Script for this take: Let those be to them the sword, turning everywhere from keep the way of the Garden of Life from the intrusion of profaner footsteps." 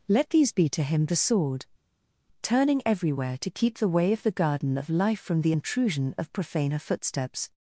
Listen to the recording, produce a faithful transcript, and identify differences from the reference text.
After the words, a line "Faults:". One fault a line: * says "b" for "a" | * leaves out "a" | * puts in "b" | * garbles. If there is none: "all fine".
Let these be to him the sword, turning everywhere to keep the way of the Garden of Life from the intrusion of profaner footsteps."
Faults:
* says "these" for "those"
* says "him" for "them"
* says "to" for "from"